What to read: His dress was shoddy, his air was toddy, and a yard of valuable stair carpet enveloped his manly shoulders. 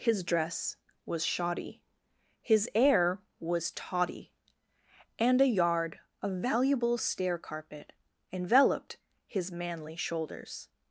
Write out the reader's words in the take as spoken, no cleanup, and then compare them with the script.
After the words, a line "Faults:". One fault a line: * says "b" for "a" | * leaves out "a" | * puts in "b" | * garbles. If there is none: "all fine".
His dress was shoddy, his air was toddy, and a yard of valuable stair carpet enveloped his manly shoulders.
Faults:
all fine